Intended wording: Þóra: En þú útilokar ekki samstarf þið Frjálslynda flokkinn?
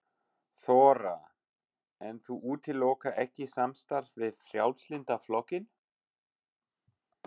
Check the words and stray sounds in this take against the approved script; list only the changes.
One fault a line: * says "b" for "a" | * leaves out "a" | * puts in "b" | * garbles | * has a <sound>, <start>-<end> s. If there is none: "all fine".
* says "við" for "þið"